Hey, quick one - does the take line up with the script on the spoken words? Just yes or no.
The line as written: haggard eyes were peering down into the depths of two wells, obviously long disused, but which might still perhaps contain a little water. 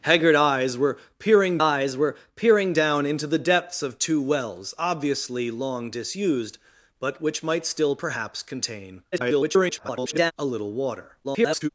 no